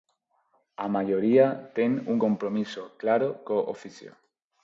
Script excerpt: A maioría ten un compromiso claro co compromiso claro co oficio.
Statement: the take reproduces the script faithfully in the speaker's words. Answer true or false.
false